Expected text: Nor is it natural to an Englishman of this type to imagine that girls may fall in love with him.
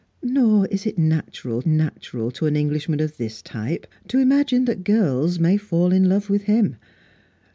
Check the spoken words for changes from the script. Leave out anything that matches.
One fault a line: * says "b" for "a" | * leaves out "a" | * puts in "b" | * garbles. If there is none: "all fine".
* puts in "natural"